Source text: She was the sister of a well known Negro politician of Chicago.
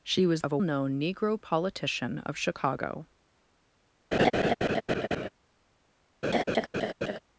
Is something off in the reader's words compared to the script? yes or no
yes